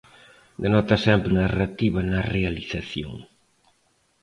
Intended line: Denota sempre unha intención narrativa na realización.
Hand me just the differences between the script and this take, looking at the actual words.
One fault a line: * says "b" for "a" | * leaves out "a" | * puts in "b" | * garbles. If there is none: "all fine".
* leaves out "unha intención"